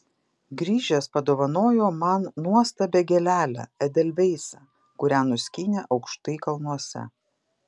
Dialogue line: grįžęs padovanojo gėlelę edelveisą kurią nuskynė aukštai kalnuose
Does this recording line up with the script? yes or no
no